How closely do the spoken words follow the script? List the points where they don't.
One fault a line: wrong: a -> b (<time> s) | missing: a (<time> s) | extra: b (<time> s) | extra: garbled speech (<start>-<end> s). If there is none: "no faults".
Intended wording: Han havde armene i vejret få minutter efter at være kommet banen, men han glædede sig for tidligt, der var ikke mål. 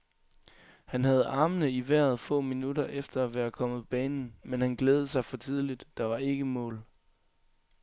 no faults